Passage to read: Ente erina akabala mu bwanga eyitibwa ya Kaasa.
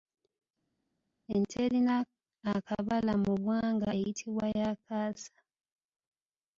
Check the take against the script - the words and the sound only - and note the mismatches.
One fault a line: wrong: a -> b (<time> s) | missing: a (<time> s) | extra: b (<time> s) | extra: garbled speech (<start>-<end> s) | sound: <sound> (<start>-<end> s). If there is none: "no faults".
no faults